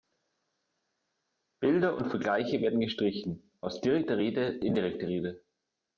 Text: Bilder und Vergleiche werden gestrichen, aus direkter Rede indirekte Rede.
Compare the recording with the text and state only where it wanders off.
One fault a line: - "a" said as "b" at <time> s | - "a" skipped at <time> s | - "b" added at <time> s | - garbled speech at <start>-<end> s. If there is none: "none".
none